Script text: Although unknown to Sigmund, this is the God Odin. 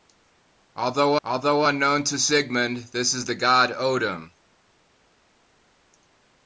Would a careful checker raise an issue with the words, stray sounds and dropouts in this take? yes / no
yes